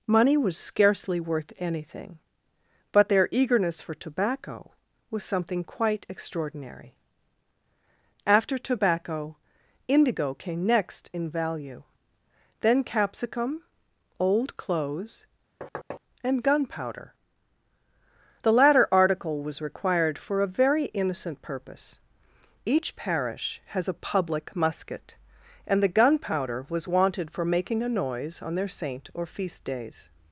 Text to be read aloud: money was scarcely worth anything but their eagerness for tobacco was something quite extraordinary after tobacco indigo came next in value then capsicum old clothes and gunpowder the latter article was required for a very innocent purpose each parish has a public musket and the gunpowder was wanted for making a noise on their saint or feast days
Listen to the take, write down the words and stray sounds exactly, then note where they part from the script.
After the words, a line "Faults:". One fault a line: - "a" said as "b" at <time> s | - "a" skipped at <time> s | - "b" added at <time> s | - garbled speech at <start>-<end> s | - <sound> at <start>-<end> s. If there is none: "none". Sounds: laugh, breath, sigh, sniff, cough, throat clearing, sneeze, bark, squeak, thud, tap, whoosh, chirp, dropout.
money was scarcely worth anything but their eagerness for tobacco was something quite extraordinary after tobacco indigo came next in value then capsicum old clothes and gunpowder the latter article was required for a very innocent purpose each parish has a public musket and the gunpowder was wanted for making a noise on their saint or feast days
Faults:
- thud at 15.6-16.0 s